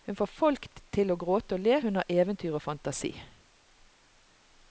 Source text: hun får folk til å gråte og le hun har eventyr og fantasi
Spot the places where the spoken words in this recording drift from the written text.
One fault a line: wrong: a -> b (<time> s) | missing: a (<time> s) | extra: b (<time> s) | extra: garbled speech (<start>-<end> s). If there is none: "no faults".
no faults